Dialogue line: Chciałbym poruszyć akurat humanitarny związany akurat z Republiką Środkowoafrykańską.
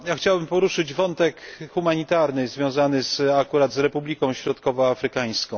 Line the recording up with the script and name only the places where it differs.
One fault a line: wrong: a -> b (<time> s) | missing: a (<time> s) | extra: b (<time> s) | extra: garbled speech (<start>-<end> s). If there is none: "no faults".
wrong: akurat -> wątek (0.9 s)